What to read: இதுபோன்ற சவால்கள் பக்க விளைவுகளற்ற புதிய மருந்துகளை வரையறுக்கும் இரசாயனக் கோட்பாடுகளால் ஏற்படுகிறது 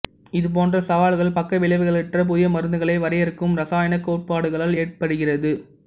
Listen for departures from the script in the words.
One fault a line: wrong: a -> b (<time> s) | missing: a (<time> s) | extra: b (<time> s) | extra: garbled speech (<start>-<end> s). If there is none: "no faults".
no faults